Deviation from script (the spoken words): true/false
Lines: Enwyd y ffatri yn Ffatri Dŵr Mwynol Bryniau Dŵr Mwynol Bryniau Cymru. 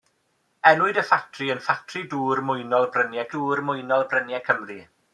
false